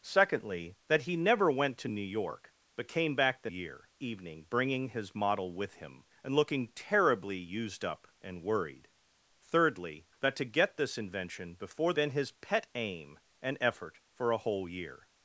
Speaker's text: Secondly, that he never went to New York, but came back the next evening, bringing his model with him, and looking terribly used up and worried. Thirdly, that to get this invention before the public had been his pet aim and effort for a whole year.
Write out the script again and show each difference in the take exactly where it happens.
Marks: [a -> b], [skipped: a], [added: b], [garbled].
Secondly, that he never went to New York, but came back the [next -> year] evening, bringing his model with him, and looking terribly used up and worried. Thirdly, that to get this invention before [skipped: the public had] been his pet aim and effort for a whole year.